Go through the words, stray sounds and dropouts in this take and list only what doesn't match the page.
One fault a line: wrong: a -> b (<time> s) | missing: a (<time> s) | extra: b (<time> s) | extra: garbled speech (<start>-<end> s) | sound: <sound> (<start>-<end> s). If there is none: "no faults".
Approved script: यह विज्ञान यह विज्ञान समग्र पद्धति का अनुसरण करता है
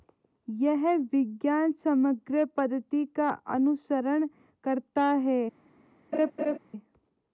missing: यह विज्ञान (1.7 s)
sound: laugh (6.1-6.6 s)